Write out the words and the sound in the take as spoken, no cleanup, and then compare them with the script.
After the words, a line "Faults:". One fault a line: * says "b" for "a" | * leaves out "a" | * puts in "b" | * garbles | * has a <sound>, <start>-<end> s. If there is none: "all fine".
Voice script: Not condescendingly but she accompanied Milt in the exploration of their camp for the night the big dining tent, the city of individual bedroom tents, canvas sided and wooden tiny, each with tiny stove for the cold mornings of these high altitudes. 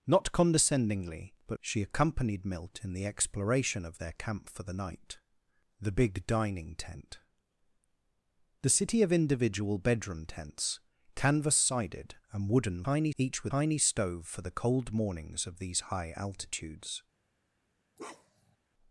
Not condescendingly but she accompanied Milt in the exploration of their camp for the night the big dining tent, the city of individual bedroom tents, canvas sided and wooden tiny, each with tiny stove for the cold mornings of these high altitudes.
Faults:
* has a bark, 18.0-18.6 s